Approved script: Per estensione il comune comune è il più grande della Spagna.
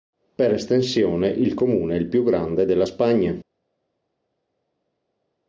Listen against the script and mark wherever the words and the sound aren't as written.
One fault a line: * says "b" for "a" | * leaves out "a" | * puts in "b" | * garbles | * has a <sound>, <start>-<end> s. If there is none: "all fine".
* leaves out "comune"